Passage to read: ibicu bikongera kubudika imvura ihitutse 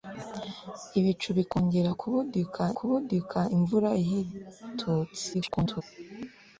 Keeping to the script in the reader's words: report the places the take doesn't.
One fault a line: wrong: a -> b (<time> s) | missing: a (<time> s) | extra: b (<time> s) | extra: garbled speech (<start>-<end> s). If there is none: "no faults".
extra: kubudika (2.8 s)
extra: garbled speech (5.3-5.8 s)